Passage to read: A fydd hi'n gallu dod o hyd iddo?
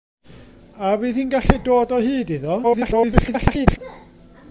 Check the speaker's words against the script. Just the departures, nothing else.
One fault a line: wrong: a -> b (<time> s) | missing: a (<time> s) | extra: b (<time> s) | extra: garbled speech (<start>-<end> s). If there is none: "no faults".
extra: garbled speech (2.6-3.8 s)